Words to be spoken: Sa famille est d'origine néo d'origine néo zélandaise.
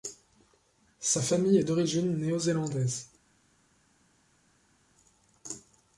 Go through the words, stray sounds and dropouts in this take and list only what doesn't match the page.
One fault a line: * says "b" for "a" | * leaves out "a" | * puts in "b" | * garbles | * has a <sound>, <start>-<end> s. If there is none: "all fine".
* leaves out "d'origine néo"